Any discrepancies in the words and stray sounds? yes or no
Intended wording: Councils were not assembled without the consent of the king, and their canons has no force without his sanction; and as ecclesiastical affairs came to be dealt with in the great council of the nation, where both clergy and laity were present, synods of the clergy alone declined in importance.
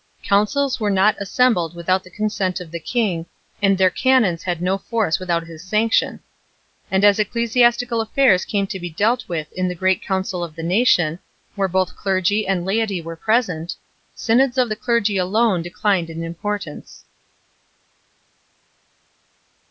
yes